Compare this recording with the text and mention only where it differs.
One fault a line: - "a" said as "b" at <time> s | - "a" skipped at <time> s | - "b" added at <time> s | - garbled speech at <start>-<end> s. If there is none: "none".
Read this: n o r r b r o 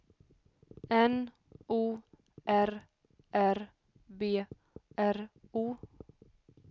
none